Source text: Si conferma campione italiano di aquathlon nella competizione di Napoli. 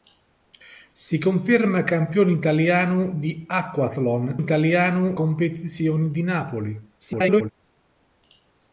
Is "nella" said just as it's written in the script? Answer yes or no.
no